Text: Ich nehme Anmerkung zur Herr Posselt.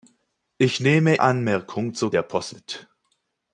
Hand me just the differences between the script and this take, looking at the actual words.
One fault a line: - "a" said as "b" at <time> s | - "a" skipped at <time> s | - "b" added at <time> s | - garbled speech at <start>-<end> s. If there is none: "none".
none